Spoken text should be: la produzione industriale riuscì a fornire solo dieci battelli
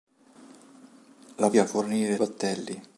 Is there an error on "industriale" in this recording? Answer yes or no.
yes